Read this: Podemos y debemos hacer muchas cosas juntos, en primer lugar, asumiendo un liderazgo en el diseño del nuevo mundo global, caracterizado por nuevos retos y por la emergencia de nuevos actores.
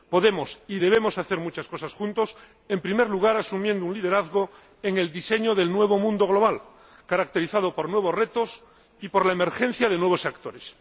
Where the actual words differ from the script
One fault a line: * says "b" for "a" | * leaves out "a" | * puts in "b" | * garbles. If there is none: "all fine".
all fine